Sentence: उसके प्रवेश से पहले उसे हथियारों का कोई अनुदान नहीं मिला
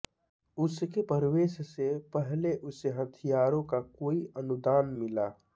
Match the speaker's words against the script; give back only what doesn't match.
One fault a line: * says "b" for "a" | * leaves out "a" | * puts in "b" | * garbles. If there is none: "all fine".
* leaves out "नहीं"